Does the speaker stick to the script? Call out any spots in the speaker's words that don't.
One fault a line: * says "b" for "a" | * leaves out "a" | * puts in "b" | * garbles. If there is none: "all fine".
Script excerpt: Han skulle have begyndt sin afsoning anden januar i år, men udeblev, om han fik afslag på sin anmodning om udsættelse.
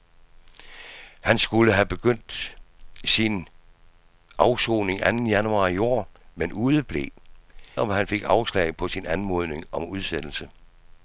all fine